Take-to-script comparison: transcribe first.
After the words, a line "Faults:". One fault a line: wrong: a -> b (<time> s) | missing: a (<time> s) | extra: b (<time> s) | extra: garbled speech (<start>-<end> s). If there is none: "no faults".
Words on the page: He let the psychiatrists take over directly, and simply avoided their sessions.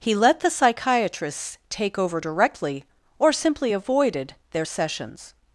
He let the psychiatrists take over directly, or simply avoided their sessions.
Faults:
wrong: and -> or (3.2 s)